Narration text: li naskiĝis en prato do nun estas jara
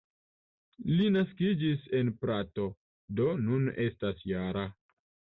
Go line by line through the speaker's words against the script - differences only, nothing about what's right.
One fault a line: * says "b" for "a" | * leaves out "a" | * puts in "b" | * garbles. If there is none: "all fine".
all fine